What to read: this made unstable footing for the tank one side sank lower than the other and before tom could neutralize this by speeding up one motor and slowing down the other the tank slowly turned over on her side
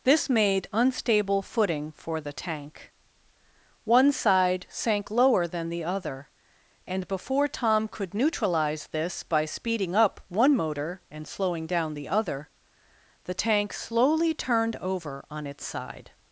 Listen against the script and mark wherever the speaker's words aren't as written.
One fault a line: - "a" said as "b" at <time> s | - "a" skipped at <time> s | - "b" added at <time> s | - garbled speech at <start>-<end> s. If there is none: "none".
- "her" said as "its" at 15.5 s